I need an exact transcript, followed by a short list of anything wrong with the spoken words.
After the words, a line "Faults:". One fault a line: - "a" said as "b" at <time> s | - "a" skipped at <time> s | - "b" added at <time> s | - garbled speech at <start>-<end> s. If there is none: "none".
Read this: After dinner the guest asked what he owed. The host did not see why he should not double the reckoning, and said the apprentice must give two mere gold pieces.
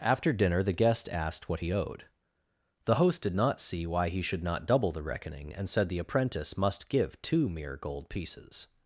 After dinner the guest asked what he owed. The host did not see why he should not double the reckoning, and said the apprentice must give two mere gold pieces.
Faults:
none